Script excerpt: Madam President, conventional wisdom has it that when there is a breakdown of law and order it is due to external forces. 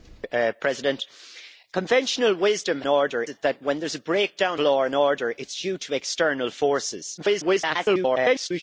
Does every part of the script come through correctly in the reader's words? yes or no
no